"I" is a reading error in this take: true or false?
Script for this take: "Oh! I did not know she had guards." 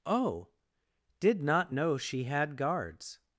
true